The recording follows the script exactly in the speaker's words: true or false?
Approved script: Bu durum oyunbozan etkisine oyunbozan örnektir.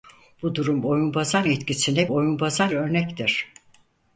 true